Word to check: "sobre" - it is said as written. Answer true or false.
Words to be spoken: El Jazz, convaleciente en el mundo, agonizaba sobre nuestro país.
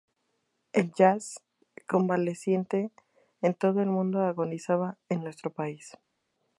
false